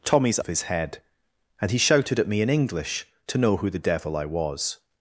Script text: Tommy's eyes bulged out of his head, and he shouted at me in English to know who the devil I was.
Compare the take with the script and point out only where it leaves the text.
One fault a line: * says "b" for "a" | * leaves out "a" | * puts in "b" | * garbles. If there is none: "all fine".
* leaves out "eyes bulged out"